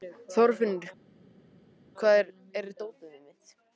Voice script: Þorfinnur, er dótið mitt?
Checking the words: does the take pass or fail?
fail